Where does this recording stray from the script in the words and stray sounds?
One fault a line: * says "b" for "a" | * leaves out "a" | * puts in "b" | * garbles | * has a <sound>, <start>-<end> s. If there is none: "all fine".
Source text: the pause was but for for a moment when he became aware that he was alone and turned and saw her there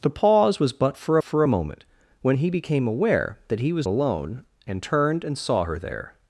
all fine